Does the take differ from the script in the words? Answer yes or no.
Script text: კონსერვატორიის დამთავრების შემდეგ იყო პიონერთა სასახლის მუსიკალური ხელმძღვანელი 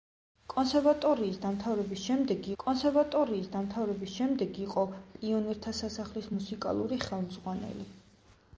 yes